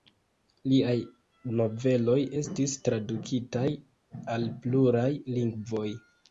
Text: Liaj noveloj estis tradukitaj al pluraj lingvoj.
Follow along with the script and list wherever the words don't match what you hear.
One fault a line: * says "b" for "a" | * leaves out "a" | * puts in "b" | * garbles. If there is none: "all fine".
all fine